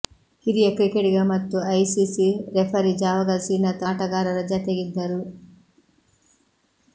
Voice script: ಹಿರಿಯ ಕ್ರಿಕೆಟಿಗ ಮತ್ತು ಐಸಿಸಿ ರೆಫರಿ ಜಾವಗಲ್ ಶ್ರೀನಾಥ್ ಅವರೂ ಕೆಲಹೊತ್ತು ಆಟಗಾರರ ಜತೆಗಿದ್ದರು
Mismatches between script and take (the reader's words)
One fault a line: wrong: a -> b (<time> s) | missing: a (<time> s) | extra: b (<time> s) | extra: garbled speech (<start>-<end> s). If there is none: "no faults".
missing: ಅವರೂ ಕೆಲಹೊತ್ತು (3.9 s)